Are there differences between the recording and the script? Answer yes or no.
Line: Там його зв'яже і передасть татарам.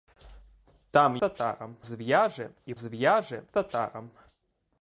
yes